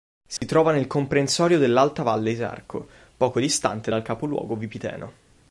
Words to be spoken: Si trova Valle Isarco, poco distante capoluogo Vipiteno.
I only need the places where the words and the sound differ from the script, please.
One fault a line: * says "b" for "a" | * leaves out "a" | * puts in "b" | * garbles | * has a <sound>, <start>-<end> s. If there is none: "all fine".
* has a dropout, 0.4-0.4 s
* puts in "nel comprensorio dell'Alta"
* puts in "dal"